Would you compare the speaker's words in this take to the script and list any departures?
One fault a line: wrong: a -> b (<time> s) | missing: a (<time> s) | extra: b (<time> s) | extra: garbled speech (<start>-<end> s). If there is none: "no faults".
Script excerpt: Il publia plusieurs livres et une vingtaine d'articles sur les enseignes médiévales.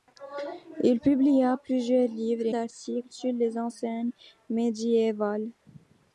missing: une vingtaine (2.5 s)